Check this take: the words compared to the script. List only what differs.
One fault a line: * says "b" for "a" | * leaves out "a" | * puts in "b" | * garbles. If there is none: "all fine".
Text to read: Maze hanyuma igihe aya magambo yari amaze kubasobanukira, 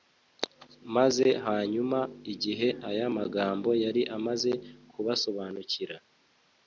all fine